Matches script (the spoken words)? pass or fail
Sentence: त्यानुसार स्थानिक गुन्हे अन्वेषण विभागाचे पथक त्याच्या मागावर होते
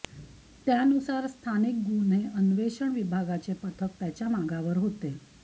pass